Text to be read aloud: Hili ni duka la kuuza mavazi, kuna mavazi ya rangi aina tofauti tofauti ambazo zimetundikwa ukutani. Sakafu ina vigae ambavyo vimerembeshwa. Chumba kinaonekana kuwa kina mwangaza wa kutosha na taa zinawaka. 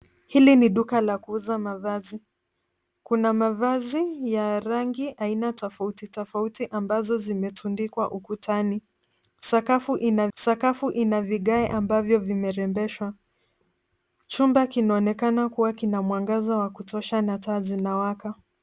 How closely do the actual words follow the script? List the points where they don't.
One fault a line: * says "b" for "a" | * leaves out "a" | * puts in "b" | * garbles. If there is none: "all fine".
* puts in "sakafu ina"